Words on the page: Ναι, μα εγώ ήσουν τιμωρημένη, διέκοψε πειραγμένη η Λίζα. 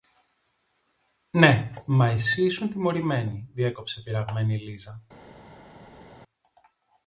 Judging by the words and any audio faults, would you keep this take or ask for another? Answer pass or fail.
fail